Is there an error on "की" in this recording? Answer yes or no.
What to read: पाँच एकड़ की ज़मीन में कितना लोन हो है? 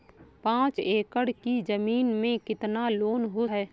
no